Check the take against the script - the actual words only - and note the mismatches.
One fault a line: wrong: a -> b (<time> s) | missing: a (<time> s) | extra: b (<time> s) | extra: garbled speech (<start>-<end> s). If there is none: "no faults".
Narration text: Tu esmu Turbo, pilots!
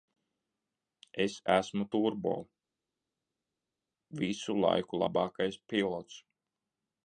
wrong: Tu -> Es (1.2 s)
extra: visu laiku labākais (4.2 s)